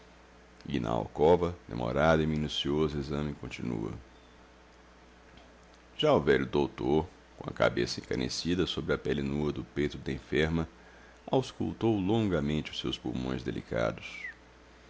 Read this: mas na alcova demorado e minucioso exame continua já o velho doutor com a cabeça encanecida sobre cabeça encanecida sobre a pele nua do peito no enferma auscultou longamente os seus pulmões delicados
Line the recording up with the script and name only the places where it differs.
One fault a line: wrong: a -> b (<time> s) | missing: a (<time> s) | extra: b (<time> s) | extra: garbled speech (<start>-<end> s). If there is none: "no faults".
wrong: mas -> e (0.7 s)
missing: cabeça encanecida sobre (8.9 s)
wrong: no -> da (10.0 s)